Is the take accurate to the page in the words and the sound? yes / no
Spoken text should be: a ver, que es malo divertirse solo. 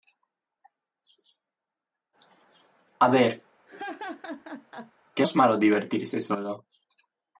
no